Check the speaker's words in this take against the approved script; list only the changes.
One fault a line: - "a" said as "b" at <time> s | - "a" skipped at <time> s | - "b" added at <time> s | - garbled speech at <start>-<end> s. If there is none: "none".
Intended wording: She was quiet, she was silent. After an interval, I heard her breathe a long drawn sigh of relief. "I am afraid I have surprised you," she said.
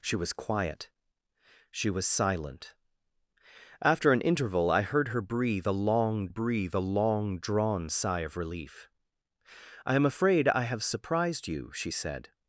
- "breathe a long" added at 6.3 s